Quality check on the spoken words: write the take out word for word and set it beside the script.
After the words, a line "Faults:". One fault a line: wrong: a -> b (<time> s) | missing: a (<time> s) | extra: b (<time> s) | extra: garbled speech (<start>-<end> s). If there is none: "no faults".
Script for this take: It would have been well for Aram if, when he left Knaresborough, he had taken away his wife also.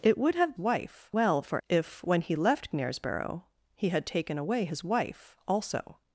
It would have wife well for If, when he left Knaresborough, he had taken away his wife also.
Faults:
wrong: been -> wife (0.6 s)
missing: Aram (1.6 s)